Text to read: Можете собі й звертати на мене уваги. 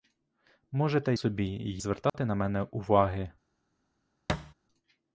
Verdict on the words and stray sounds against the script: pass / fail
fail